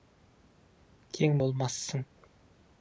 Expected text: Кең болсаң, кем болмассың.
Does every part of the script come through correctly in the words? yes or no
no